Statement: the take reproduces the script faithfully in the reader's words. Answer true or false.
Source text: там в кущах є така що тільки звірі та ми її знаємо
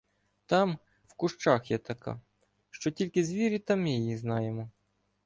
true